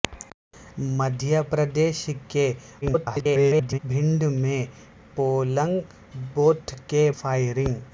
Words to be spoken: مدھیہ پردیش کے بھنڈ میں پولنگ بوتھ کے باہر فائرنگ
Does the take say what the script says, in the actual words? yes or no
no